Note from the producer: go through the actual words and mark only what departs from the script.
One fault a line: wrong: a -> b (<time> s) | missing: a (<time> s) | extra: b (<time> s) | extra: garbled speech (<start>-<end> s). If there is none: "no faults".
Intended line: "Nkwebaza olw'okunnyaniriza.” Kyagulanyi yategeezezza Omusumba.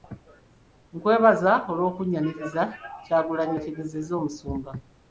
no faults